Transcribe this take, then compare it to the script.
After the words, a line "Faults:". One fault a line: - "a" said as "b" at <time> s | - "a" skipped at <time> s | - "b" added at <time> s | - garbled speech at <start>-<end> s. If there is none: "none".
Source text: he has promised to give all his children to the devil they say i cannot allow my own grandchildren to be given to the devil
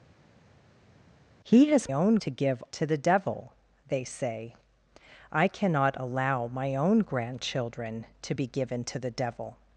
he has own to give to the devil they say i cannot allow my own grandchildren to be given to the devil
Faults:
- "promised" said as "own" at 1.9 s
- "all his children" skipped at 2.6 s